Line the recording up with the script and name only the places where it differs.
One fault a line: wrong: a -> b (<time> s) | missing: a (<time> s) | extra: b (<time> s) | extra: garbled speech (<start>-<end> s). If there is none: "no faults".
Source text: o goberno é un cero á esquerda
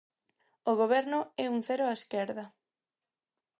no faults